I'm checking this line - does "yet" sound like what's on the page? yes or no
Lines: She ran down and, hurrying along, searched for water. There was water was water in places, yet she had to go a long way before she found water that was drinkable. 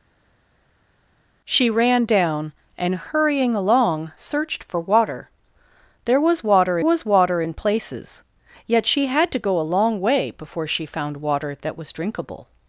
yes